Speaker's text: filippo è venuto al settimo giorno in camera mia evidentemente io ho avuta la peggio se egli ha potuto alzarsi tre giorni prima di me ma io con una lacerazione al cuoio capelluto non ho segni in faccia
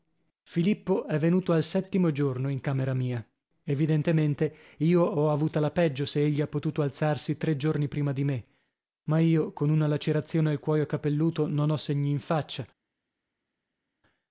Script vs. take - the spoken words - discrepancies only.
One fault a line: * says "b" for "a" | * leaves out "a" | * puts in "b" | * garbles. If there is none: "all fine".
all fine